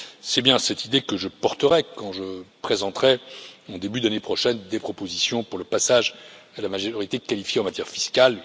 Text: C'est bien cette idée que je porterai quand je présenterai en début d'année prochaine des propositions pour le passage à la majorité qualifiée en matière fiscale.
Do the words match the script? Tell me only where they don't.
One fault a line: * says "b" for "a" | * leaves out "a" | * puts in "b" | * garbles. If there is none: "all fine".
all fine